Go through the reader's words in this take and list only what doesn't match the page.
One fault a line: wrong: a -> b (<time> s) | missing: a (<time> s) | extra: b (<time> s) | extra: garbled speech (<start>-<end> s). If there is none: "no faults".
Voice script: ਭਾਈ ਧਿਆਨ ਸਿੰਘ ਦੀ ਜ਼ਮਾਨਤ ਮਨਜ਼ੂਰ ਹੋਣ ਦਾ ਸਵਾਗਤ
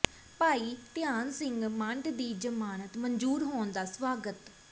extra: ਮੰਡ (1.7 s)